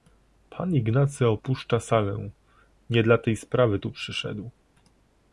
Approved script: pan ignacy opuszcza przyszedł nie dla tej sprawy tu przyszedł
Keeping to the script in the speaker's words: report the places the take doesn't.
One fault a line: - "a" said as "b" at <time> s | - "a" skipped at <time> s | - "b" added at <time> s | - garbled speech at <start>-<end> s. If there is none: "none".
- "przyszedł" said as "salę" at 1.8 s